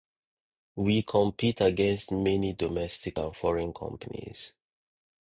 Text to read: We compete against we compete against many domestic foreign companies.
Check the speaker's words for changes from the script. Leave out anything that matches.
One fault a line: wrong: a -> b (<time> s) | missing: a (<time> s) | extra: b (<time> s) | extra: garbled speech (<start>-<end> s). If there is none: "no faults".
missing: we compete against (2.1 s)
extra: and (3.2 s)